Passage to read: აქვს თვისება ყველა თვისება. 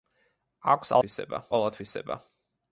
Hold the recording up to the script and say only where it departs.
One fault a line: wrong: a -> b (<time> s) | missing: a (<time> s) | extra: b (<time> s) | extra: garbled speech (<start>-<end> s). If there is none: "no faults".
no faults